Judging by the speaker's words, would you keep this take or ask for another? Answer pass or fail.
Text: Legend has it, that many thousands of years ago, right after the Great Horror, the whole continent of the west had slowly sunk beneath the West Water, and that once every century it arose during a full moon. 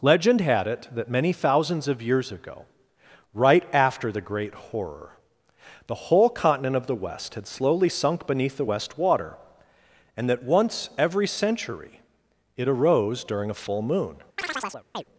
fail